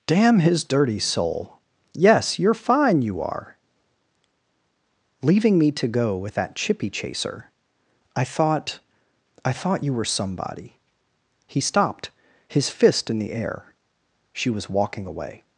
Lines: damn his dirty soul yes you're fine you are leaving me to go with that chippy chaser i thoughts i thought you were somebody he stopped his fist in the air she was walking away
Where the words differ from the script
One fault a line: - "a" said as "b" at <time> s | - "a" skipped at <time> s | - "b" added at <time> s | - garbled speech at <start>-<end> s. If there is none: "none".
- "thoughts" said as "thought" at 8.2 s